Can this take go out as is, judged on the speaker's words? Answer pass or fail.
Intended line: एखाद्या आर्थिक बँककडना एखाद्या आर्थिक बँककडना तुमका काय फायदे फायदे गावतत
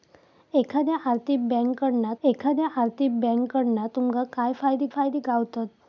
pass